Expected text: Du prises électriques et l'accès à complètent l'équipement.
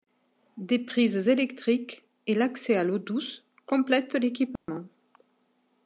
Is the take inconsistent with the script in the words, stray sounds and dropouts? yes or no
yes